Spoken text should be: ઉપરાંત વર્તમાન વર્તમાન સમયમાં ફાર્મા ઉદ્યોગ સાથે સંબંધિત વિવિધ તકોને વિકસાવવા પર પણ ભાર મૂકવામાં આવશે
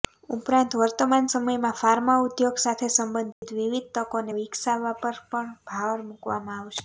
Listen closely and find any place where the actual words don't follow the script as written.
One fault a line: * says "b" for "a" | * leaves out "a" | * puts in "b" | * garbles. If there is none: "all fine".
* leaves out "વર્તમાન"